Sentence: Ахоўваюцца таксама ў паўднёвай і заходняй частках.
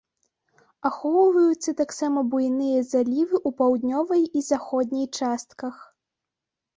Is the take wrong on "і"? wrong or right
right